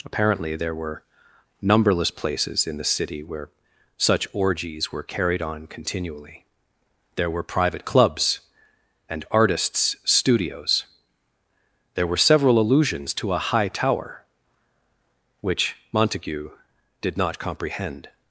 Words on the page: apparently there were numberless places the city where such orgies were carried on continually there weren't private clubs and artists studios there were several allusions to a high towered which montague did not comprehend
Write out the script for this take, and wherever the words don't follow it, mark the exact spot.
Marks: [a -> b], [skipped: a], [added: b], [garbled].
apparently there were numberless places [added: in] the city where such orgies were carried on continually there [weren't -> were] private clubs and artists studios there were several allusions to a high [towered -> tower] which montague did not comprehend